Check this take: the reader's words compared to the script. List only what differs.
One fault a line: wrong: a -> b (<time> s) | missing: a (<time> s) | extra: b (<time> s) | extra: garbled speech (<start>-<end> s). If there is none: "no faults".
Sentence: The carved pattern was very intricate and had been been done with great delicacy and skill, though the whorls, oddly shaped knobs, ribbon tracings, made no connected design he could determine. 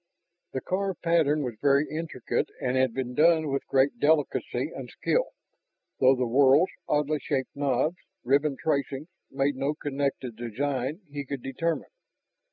missing: been (3.1 s)